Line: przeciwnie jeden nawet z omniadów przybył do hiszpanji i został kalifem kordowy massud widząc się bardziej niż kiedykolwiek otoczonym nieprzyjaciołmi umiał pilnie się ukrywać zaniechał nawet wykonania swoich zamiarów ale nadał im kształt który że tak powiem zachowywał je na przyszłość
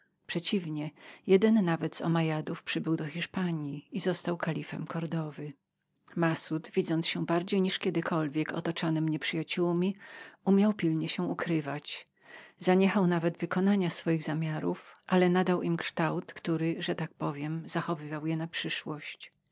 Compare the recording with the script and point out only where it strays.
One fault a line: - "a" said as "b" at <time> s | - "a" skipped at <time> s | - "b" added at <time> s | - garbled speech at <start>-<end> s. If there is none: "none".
none